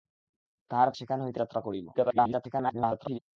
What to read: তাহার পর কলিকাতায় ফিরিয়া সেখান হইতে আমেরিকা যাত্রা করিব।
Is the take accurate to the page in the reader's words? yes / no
no